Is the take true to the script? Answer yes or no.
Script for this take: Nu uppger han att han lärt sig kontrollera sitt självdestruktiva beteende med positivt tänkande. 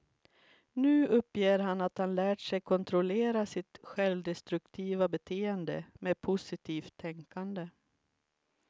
yes